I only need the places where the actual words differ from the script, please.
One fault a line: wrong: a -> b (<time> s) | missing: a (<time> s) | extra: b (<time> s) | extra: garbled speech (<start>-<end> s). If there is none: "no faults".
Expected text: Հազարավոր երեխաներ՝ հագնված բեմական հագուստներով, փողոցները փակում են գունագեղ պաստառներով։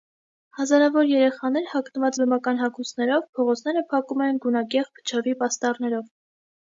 extra: փչովի (5.0 s)